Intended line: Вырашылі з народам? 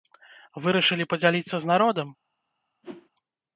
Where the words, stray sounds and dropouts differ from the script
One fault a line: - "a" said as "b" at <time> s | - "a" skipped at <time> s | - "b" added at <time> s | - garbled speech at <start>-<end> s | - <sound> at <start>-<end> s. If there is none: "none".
- "падзяліцца" added at 1.1 s
- whoosh at 2.8-3.1 s